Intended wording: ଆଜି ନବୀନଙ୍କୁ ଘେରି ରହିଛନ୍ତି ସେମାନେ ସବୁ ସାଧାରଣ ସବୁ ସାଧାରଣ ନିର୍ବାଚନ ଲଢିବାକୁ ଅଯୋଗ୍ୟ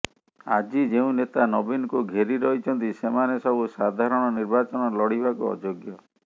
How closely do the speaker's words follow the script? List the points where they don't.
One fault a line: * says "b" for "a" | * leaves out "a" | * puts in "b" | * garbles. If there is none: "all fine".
* puts in "ଯେଉଁ ନେତା"
* leaves out "ସବୁ ସାଧାରଣ"